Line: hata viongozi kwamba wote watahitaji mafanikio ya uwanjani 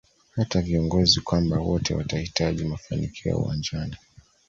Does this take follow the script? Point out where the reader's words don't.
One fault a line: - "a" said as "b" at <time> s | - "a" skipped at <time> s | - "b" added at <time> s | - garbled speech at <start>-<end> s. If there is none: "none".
none